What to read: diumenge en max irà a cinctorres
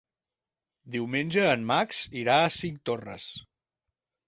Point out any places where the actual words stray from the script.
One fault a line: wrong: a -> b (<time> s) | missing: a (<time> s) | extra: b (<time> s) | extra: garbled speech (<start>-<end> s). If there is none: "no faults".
no faults